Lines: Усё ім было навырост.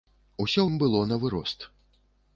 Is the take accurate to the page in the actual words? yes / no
yes